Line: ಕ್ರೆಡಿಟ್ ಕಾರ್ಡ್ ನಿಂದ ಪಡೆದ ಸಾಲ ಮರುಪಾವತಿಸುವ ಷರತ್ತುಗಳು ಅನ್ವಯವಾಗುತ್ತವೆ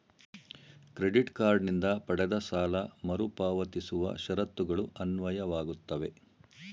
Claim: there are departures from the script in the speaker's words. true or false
false